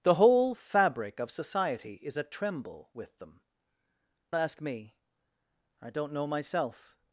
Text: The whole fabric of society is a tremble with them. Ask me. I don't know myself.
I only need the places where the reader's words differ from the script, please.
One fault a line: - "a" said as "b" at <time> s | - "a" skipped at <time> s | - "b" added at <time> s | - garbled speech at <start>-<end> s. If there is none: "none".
none